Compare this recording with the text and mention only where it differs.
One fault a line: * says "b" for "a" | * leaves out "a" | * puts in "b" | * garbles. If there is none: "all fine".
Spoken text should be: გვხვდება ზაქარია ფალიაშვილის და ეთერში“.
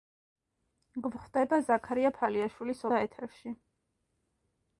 all fine